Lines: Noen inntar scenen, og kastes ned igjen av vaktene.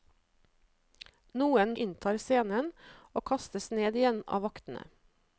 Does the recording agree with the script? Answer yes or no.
yes